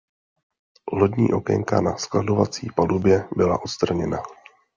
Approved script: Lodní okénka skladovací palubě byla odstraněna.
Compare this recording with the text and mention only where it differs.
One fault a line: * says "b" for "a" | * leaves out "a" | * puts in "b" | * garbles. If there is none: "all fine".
* puts in "na"